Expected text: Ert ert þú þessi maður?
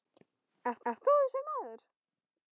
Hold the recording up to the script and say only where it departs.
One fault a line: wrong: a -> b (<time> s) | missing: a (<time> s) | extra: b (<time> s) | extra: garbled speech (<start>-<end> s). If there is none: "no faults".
no faults